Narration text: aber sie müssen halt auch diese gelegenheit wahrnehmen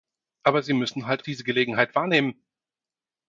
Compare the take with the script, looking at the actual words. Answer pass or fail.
fail